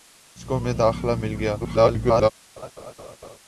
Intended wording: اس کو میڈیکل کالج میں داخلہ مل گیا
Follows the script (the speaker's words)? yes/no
no